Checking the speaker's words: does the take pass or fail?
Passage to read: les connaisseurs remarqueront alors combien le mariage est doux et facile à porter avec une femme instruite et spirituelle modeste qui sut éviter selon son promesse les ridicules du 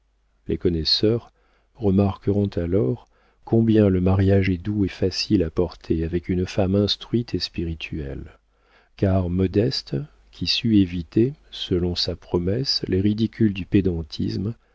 fail